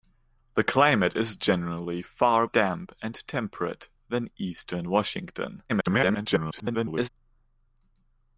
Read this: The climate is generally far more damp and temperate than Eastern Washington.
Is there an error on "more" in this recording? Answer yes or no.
yes